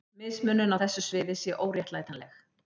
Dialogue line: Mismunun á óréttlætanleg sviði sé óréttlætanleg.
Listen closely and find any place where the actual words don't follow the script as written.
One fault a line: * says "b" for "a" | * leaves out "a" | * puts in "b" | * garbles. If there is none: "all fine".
* says "þessu" for "óréttlætanleg"